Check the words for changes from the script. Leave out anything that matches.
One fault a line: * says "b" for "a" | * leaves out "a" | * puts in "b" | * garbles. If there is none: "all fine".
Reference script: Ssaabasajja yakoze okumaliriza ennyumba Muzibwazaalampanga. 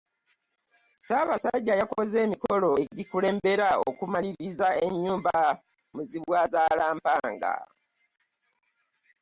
* puts in "emikolo egikulembera"